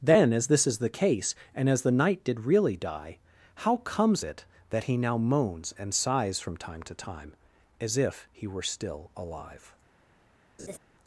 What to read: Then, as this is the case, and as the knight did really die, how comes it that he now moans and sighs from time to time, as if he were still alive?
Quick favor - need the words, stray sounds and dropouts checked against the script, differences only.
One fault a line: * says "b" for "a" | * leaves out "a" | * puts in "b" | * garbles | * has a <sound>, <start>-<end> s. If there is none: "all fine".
* has a laugh, 10.6-10.8 s